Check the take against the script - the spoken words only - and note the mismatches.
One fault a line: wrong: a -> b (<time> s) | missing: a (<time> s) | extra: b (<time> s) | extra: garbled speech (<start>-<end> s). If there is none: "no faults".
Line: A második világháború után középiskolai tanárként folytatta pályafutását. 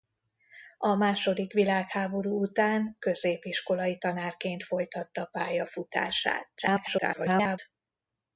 extra: garbled speech (6.6-7.6 s)